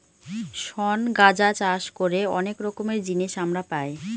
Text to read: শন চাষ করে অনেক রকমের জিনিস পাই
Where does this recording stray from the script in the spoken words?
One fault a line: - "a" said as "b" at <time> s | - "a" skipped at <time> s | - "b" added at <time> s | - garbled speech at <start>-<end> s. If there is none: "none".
- "গাঁজা" added at 1.1 s
- "আমরা" added at 3.4 s